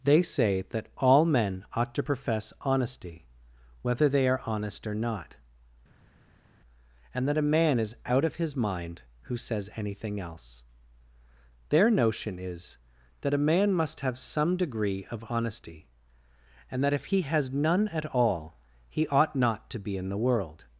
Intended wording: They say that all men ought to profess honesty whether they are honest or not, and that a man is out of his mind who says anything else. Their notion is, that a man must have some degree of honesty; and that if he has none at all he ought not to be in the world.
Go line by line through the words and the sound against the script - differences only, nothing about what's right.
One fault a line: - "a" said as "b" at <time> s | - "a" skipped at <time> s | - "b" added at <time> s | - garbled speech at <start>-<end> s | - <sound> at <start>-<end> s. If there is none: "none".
none